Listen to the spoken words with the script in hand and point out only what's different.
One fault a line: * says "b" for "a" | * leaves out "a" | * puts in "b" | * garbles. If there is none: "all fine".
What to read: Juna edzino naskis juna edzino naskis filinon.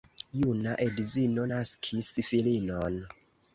* leaves out "juna edzino naskis"